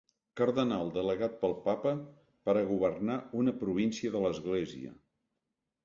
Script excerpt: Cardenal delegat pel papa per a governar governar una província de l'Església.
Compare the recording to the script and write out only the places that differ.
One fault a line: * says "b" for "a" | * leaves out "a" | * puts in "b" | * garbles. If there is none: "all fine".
* leaves out "governar"